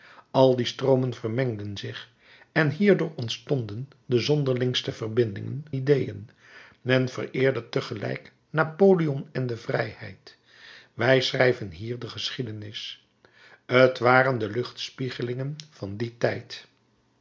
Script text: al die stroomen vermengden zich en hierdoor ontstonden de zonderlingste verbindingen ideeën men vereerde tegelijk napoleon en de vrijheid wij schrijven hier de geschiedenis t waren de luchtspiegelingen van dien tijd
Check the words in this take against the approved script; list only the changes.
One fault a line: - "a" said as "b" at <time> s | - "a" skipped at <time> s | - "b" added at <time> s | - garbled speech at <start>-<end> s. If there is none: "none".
none